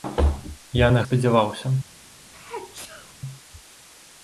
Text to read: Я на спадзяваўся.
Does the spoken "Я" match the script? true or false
true